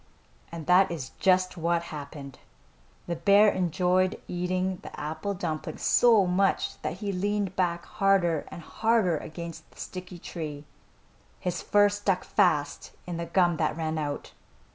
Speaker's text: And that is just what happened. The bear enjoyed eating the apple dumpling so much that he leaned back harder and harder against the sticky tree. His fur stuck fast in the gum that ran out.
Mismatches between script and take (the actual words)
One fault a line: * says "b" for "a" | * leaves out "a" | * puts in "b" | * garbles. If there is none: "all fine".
all fine